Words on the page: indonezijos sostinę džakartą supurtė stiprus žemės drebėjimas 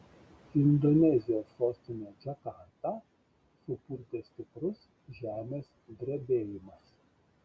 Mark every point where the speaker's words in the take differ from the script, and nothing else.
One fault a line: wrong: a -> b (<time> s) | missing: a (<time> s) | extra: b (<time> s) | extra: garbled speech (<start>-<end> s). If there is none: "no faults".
no faults